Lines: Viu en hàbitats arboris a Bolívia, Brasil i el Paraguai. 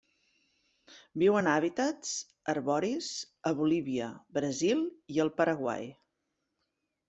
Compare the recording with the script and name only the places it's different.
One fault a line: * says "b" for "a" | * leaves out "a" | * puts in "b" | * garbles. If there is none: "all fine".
all fine